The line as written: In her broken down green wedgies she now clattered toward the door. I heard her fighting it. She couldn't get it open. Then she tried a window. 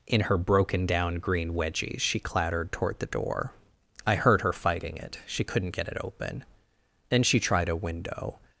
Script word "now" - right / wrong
wrong